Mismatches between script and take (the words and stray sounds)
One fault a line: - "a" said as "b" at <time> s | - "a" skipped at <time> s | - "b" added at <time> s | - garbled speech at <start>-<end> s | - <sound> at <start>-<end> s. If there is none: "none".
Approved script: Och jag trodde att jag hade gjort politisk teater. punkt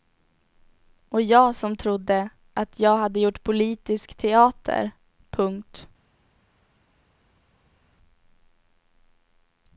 - "som" added at 1.6 s